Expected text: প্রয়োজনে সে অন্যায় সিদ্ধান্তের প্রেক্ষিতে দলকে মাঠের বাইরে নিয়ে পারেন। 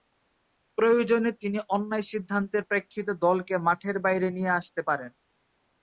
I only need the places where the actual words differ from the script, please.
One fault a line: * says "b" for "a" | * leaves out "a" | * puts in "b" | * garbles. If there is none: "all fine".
* says "তিনি" for "সে"
* puts in "আসতে"